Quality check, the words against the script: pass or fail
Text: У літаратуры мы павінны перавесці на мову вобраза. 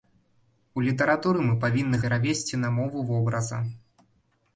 pass